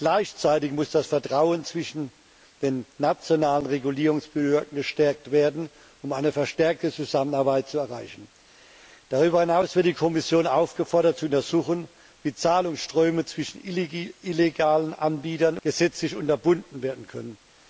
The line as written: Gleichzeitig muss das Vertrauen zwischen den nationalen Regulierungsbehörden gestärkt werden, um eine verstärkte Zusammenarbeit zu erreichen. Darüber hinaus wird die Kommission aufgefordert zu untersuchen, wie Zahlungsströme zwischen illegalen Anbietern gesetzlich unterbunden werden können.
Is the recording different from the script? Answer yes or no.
no